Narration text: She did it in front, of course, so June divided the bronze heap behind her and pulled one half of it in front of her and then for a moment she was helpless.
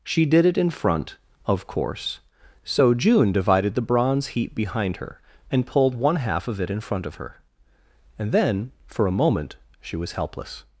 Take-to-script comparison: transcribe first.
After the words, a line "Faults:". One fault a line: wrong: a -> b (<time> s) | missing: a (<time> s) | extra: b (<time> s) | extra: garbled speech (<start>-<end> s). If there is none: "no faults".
She did it in front, of course, so June divided the bronze heap behind her and pulled one half of it in front of her and then for a moment she was helpless.
Faults:
no faults